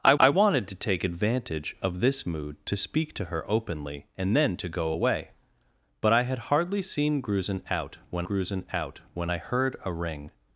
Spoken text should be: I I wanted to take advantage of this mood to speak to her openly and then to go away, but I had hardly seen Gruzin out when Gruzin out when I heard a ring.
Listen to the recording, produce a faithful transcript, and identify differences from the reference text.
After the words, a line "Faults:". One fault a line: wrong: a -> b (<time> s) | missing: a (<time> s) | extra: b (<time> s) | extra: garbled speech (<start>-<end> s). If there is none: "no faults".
I I wanted to take advantage of this mood to speak to her openly and then to go away, but I had hardly seen Gruzin out when Gruzin out when I heard a ring.
Faults:
no faults